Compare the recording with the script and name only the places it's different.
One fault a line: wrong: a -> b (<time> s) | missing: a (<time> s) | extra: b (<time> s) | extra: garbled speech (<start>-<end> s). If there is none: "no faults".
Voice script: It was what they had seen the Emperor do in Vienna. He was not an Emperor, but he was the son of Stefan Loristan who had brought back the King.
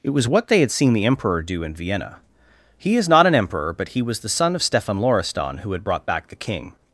wrong: was -> is (3.0 s)